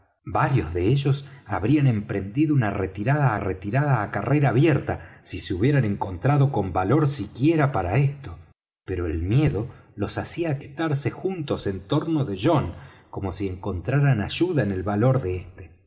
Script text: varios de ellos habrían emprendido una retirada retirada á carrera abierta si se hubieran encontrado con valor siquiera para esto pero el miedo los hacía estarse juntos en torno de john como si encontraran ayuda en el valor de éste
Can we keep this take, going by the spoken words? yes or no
yes